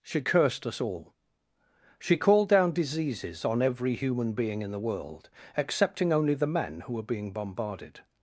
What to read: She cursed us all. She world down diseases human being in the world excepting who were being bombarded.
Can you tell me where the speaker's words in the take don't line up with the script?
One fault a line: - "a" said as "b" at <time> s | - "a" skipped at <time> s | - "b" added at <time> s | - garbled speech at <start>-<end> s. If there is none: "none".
- "world" said as "called" at 2.1 s
- "on every" added at 3.4 s
- "only the men" added at 6.1 s